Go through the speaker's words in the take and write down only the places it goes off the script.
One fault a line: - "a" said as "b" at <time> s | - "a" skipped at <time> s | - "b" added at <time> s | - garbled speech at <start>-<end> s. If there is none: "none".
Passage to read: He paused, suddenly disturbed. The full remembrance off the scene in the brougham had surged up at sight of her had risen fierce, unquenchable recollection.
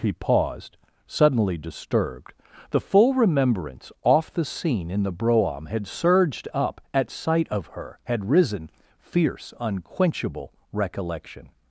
none